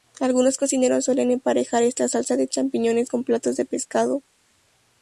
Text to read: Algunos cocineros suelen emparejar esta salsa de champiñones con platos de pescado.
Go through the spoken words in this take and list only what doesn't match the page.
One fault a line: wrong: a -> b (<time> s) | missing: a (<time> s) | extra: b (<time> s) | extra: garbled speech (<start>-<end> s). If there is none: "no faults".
no faults